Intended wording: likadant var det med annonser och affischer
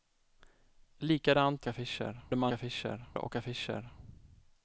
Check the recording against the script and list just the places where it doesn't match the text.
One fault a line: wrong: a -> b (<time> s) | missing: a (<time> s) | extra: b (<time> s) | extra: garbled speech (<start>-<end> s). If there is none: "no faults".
wrong: var -> affischer (1.7 s)
wrong: annonser -> affischer (2.5 s)